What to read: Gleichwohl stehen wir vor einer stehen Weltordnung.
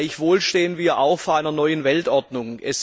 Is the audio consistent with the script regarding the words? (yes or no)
no